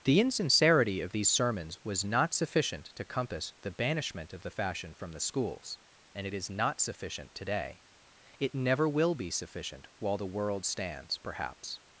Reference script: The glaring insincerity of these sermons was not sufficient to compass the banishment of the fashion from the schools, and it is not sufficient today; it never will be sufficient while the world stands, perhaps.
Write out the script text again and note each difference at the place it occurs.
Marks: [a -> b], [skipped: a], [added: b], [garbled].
The [skipped: glaring] insincerity of these sermons was not sufficient to compass the banishment of the fashion from the schools, and it is not sufficient today; it never will be sufficient while the world stands, perhaps.